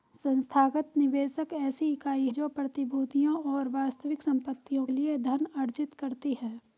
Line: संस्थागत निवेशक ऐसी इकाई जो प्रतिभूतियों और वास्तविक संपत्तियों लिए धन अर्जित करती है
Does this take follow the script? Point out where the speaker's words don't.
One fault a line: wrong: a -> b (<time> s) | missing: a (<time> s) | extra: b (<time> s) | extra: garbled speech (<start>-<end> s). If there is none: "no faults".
no faults